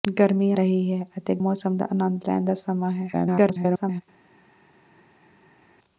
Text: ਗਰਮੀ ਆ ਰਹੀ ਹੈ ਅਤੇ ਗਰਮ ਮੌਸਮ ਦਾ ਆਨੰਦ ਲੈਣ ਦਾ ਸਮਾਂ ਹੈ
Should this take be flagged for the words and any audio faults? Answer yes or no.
yes